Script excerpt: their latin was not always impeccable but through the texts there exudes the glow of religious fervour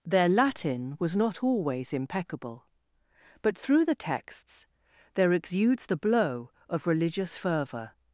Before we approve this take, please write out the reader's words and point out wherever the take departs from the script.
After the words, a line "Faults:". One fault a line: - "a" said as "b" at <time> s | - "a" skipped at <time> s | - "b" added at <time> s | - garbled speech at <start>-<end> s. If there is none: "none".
their latin was not always impeccable but through the texts there exudes the blow of religious fervour
Faults:
- "glow" said as "blow" at 6.0 s